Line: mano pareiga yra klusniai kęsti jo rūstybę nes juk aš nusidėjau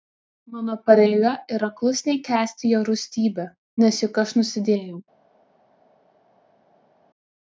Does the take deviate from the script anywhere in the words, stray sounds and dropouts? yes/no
no